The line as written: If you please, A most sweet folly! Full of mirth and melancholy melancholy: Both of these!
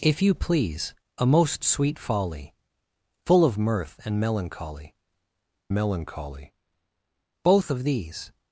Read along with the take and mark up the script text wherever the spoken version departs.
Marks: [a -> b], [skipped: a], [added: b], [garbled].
If you please, A most sweet folly! Full of mirth and melancholy melancholy: Both of these!